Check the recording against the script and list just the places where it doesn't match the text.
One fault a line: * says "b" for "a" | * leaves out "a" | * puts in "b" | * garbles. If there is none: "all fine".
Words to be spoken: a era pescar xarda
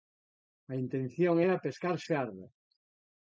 * puts in "intención"